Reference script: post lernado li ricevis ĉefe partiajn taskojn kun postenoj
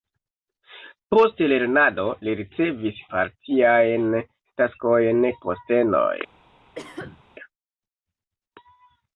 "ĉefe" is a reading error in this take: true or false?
true